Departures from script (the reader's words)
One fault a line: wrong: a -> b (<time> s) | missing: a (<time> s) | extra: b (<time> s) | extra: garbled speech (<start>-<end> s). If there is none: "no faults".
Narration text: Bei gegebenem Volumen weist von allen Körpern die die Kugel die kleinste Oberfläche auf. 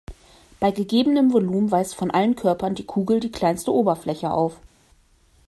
missing: die (2.9 s)